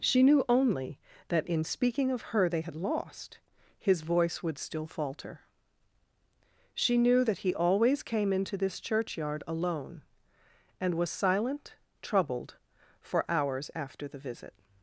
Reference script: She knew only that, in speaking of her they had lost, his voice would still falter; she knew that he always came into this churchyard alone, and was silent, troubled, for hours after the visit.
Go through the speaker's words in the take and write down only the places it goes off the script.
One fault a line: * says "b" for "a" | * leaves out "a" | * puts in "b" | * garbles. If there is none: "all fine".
all fine